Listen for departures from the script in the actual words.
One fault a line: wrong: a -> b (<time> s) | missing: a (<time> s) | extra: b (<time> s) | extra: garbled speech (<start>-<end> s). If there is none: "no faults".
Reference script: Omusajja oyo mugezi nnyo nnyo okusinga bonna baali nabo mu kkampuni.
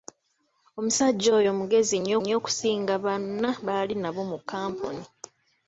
no faults